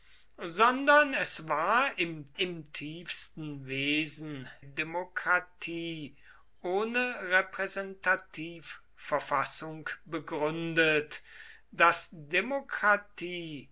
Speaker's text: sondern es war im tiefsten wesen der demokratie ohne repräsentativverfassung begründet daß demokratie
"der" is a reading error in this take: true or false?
true